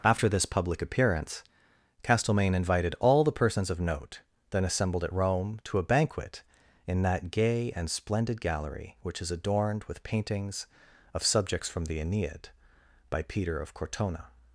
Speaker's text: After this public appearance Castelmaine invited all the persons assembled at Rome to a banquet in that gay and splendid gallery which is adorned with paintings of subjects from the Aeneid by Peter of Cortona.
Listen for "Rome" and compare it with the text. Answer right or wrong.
right